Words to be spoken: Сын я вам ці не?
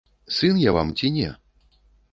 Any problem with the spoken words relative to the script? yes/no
no